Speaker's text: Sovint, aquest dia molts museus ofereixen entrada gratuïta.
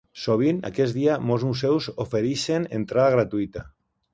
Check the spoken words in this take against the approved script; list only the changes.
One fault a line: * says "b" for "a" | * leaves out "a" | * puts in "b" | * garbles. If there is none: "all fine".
all fine